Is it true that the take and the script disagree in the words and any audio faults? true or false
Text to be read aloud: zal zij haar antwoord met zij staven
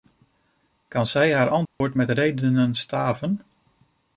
true